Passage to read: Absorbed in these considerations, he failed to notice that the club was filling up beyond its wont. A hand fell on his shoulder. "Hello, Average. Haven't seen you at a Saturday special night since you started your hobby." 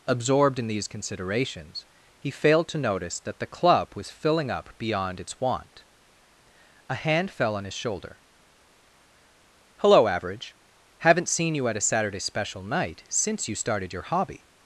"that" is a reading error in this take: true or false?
false